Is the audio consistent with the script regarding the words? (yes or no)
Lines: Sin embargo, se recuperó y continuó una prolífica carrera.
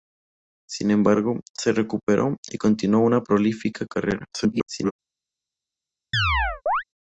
no